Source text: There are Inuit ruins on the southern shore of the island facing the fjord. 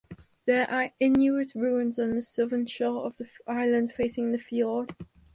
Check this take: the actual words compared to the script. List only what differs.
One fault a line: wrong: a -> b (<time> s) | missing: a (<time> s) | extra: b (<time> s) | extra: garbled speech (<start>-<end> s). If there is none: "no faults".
no faults